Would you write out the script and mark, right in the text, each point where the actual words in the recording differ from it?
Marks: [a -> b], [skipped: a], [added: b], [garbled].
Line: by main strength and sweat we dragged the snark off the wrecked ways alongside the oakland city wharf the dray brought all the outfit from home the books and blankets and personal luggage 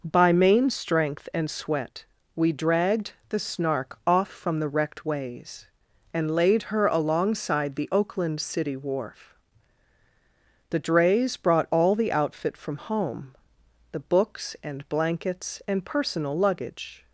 by main strength and sweat we dragged the snark off [added: from] the wrecked ways [added: and laid her] alongside the oakland city wharf the [dray -> drays] brought all the outfit from home the books and blankets and personal luggage